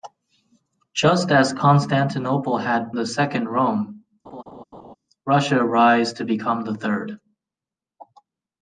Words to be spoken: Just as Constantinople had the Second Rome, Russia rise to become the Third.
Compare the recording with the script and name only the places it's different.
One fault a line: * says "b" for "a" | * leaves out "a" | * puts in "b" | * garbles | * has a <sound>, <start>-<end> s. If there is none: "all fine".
* has a laugh, 4.2-5.0 s